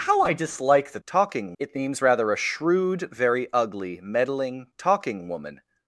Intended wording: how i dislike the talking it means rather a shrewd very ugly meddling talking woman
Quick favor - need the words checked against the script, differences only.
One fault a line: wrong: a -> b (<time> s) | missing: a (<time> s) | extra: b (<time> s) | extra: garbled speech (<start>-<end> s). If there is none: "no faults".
no faults